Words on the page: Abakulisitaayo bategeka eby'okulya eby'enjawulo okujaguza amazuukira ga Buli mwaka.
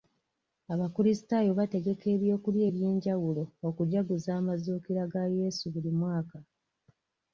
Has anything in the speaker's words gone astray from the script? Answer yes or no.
yes